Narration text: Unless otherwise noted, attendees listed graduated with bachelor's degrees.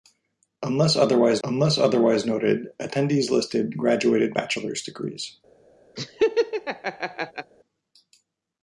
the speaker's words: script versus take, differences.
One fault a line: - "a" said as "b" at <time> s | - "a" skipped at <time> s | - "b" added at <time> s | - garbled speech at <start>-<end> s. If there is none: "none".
- "unless otherwise" added at 1.4 s
- "with" skipped at 4.4 s